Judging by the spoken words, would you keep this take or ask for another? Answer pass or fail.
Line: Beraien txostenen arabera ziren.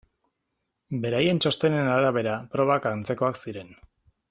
fail